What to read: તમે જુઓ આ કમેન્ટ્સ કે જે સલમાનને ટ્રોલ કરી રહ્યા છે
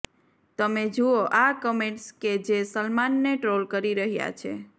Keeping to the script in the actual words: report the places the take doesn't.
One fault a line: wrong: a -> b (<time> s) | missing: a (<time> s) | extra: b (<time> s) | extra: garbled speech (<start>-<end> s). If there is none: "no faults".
no faults